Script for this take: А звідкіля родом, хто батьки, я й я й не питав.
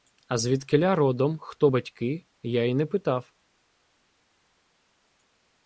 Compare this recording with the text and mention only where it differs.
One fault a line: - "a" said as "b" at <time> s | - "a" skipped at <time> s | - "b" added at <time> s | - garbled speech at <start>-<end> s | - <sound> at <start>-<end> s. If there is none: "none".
- "я й" skipped at 2.7 s